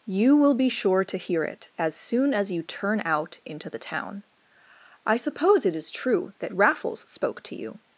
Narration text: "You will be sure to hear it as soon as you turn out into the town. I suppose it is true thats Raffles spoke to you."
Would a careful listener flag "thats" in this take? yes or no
yes